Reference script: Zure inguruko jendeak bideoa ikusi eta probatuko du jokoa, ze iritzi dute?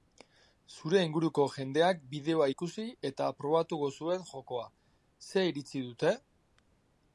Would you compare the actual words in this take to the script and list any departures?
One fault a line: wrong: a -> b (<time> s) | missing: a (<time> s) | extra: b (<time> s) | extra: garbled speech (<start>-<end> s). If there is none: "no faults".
wrong: du -> zuen (4.0 s)